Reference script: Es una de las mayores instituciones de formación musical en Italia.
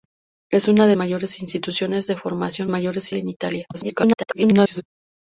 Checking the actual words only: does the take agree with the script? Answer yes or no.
no